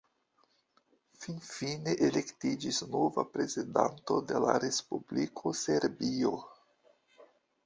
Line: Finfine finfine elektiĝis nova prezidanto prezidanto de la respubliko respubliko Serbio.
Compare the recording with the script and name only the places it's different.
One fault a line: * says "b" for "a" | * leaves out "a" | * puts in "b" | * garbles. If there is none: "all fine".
* leaves out "finfine"
* leaves out "prezidanto"
* leaves out "respubliko"